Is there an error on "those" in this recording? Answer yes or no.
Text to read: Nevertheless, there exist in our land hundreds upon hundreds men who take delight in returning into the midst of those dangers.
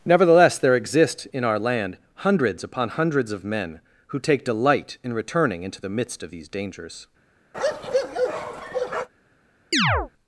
yes